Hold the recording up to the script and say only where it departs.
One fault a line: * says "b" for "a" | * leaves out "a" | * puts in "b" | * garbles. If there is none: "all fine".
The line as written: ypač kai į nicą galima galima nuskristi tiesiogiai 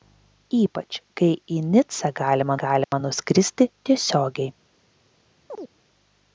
all fine